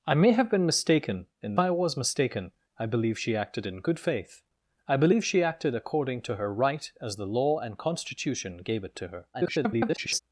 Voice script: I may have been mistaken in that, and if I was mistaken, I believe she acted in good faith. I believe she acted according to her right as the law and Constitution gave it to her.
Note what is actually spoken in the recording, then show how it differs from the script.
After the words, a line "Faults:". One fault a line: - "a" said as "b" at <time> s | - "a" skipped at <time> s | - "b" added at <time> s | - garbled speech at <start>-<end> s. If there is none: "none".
I may have been mistaken in I was mistaken, I believe she acted in good faith. I believe she acted according to her right as the law and Constitution gave it to her. [garbled]
Faults:
- "that and if" skipped at 1.6 s
- garbled speech at 9.3-10.2 s